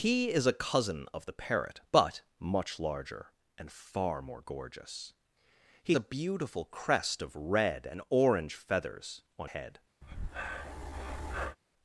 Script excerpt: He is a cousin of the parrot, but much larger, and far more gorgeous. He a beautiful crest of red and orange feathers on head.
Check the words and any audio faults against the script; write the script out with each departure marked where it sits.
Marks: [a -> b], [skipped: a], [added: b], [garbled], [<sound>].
He is a cousin of the parrot, but much larger, and far more gorgeous. He a beautiful crest of red and orange feathers on head. [breath]